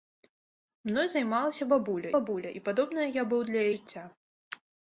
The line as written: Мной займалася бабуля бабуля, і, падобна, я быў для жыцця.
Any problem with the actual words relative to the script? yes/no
no